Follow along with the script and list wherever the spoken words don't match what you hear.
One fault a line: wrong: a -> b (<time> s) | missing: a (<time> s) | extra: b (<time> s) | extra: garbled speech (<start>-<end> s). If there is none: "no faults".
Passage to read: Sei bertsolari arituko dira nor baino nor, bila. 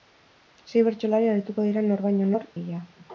no faults